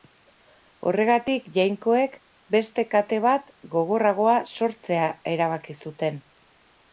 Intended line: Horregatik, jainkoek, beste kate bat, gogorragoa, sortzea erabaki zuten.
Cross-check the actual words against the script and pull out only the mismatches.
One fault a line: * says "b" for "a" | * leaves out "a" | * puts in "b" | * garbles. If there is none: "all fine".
all fine